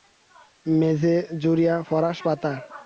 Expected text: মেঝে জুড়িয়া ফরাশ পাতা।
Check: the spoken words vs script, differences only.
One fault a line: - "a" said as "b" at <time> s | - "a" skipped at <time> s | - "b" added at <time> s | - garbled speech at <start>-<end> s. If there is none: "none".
none